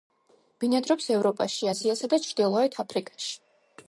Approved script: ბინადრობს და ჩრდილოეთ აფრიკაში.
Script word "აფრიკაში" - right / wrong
right